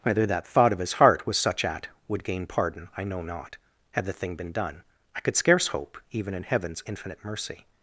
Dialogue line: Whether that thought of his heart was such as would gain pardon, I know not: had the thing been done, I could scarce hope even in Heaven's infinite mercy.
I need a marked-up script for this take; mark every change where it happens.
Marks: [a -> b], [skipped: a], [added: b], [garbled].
Whether that thought of his heart was such [as -> at] would gain pardon, I know not: had the thing been done, I could scarce hope even in Heaven's infinite mercy.